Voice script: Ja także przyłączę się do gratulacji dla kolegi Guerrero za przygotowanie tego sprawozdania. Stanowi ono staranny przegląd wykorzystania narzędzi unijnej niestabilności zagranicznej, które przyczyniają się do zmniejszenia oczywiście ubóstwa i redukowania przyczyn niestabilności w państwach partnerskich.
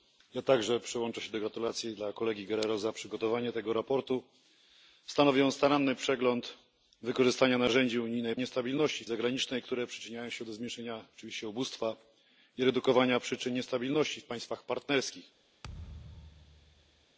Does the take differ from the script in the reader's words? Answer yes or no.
no